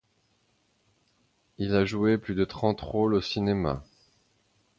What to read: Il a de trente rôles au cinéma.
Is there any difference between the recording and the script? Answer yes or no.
yes